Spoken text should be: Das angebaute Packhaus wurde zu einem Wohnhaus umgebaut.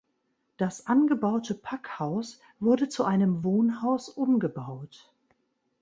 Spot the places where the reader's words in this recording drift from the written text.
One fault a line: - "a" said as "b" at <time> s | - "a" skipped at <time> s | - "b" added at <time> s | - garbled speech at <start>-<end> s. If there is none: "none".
none